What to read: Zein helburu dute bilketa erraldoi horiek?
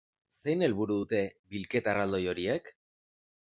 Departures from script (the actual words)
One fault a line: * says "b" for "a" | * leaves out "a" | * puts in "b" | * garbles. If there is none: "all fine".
all fine